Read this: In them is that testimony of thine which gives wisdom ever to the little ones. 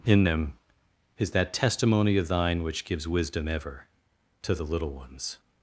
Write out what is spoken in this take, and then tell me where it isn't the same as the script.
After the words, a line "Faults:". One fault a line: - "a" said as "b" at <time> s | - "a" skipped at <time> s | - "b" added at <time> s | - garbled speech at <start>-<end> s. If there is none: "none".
In them is that testimony of thine which gives wisdom ever to the little ones.
Faults:
none